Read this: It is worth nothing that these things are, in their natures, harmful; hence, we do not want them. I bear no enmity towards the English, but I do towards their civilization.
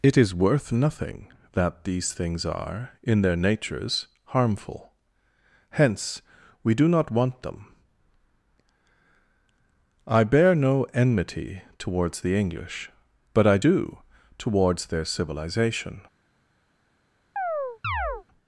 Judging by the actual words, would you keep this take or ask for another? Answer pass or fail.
pass